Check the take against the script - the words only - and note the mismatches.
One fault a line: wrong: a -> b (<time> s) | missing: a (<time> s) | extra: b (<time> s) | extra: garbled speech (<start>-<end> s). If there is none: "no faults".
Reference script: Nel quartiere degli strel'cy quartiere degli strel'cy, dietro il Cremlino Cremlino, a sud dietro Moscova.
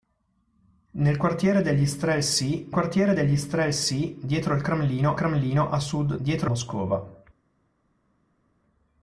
no faults